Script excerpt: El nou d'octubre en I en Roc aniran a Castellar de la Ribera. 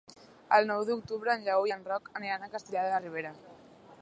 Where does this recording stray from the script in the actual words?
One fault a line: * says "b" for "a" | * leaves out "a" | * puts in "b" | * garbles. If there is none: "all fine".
* puts in "Lleó"